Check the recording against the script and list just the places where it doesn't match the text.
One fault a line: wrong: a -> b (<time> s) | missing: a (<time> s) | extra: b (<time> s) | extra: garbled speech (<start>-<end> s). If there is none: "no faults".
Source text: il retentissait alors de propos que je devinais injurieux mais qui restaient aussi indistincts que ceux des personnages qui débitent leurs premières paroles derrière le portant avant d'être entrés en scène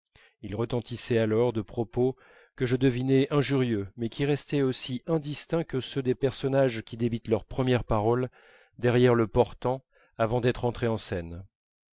no faults